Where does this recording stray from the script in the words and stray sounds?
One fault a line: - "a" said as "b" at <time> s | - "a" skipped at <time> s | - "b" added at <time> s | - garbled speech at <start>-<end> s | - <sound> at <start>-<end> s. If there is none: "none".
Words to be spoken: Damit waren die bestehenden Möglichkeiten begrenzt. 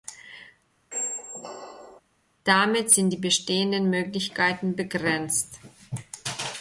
- squeak at 0.9-2.0 s
- "waren" said as "sind" at 2.9 s